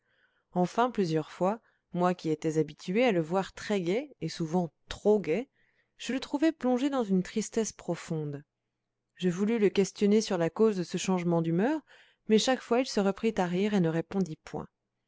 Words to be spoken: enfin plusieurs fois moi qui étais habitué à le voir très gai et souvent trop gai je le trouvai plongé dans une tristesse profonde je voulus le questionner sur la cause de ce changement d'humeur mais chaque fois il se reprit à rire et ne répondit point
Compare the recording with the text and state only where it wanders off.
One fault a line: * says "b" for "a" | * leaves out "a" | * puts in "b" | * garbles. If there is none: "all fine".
all fine